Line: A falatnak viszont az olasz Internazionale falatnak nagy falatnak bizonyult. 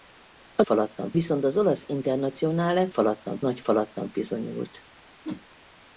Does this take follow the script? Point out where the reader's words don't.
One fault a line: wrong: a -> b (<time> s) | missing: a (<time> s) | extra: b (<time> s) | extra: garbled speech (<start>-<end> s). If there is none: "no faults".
no faults